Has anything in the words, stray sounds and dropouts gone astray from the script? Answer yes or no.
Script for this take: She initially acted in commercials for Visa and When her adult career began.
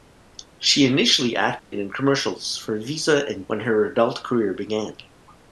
yes